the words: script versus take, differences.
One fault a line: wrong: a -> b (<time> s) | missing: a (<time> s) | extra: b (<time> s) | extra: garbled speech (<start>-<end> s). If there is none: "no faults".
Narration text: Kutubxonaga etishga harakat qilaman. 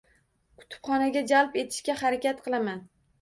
extra: jalb (1.3 s)